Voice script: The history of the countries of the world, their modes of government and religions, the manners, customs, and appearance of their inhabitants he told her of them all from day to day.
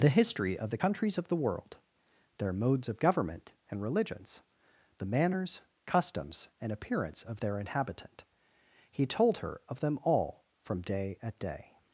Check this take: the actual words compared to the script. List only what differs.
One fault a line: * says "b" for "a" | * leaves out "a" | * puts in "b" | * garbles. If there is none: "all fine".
* says "inhabitant" for "inhabitants"
* says "at" for "to"